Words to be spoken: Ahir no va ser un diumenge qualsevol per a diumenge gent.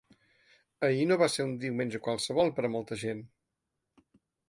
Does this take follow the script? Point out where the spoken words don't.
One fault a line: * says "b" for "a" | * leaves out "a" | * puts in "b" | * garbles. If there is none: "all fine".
* says "molta" for "diumenge"